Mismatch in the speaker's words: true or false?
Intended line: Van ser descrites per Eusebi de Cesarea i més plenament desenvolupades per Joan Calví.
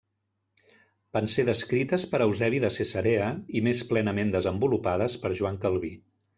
false